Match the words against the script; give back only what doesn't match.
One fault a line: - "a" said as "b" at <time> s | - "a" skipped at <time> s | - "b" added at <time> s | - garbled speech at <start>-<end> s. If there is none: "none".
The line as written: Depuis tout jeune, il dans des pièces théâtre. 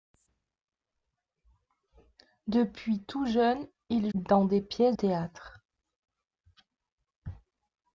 none